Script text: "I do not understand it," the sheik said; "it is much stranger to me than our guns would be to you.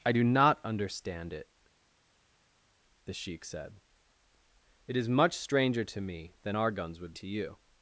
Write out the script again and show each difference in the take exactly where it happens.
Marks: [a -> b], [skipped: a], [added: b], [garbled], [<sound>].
"I do not understand it," the sheik said; "it is much stranger to me than our guns would [skipped: be] to you.